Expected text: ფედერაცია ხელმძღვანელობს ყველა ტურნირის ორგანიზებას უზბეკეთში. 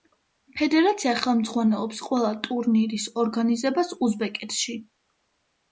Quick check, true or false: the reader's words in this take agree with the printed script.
true